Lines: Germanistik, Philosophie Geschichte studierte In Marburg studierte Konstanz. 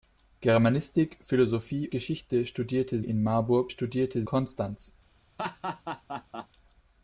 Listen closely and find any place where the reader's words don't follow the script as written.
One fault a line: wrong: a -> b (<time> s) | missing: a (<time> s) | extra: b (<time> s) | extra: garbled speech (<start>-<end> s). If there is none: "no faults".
no faults